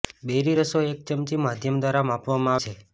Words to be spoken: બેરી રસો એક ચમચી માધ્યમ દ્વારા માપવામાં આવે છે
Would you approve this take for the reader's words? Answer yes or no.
no